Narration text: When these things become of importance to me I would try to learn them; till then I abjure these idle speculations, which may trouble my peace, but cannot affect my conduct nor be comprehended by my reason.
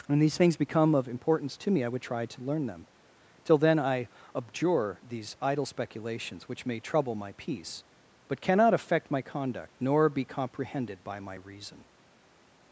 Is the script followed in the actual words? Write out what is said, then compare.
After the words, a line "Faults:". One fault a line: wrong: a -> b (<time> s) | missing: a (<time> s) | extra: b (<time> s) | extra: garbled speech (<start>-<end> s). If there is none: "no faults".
When these things become of importance to me I would try to learn them; till then I abjure these idle speculations, which may trouble my peace, but cannot affect my conduct nor be comprehended by my reason.
Faults:
no faults